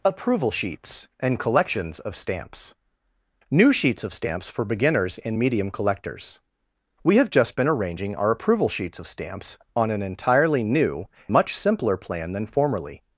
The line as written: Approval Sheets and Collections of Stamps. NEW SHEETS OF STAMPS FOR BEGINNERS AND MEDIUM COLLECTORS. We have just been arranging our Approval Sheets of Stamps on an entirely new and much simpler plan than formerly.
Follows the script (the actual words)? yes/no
no